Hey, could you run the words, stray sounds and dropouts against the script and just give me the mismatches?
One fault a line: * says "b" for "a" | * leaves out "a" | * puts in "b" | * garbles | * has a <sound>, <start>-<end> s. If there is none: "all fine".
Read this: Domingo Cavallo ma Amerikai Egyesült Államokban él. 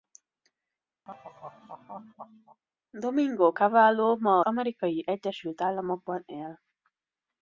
* has a laugh, 1.1-2.6 s